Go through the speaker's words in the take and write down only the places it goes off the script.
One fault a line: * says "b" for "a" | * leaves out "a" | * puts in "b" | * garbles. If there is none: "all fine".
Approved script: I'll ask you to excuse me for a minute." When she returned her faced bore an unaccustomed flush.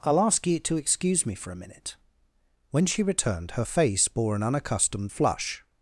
* says "face" for "faced"